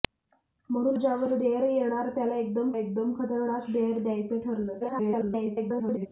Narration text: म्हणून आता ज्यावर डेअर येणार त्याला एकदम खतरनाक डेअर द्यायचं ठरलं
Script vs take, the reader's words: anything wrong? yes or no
yes